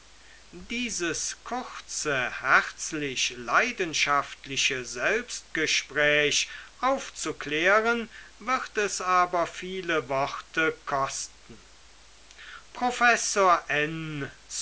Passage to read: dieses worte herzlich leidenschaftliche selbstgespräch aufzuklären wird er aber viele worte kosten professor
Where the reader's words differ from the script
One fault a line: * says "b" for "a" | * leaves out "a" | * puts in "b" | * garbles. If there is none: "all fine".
* says "kurze" for "worte"
* says "es" for "er"